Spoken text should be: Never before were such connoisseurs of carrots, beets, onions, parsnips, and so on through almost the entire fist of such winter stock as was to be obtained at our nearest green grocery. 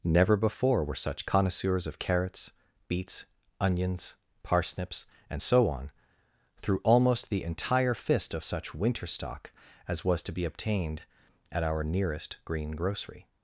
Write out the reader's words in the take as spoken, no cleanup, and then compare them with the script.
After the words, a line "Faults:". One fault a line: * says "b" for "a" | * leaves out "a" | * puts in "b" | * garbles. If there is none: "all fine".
Never before were such connoisseurs of carrots, beets, onions, parsnips, and so on through almost the entire fist of such winter stock as was to be obtained at our nearest green grocery.
Faults:
all fine